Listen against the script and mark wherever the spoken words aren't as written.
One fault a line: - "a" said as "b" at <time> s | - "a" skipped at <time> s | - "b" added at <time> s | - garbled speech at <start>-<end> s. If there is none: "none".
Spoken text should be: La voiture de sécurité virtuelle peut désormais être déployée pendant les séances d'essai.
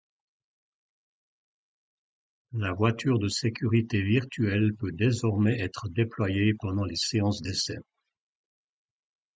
none